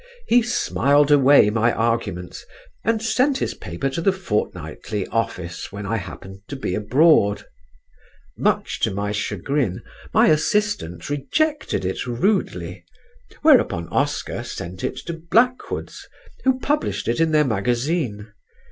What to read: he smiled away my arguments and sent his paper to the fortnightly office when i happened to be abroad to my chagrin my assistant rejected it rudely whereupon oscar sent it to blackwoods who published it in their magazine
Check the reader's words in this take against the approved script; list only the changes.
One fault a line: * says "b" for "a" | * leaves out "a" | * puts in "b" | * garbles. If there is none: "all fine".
* puts in "much"